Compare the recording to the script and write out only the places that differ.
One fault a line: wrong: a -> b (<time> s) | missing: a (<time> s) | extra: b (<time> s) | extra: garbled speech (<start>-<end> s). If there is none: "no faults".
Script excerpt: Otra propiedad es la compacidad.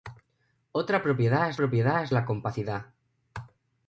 extra: propiedad es (1.6 s)